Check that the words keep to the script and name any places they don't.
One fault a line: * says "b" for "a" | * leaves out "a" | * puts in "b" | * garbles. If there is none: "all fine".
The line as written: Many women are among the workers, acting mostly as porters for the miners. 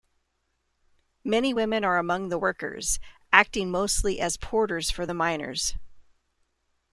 all fine